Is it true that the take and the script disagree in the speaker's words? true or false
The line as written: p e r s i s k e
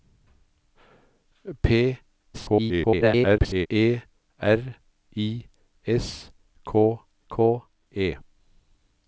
true